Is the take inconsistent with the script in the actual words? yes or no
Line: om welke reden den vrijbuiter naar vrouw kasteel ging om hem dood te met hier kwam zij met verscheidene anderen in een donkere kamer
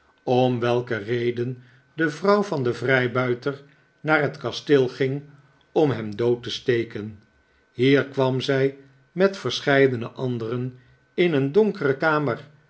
yes